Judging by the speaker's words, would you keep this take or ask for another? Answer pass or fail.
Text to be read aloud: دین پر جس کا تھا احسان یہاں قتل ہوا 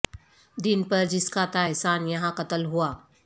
pass